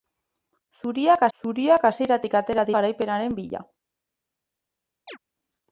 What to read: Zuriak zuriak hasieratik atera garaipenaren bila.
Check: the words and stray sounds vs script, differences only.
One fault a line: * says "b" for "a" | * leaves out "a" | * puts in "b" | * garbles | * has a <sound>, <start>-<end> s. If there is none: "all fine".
* has a chirp, 5.1-5.2 s